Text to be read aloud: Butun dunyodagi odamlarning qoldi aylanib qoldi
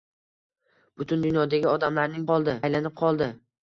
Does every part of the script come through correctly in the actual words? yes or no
yes